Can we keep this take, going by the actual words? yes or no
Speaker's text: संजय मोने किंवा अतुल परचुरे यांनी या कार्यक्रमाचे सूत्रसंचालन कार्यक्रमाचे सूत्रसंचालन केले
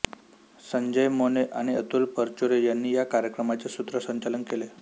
no